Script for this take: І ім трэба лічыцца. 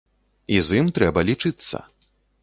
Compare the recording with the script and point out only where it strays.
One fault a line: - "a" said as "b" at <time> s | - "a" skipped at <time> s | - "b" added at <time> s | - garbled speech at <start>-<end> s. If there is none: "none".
- "з" added at 0.7 s